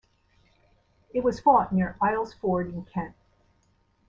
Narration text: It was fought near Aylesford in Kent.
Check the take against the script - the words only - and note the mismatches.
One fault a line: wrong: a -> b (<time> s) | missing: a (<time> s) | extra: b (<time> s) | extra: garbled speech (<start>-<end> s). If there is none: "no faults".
no faults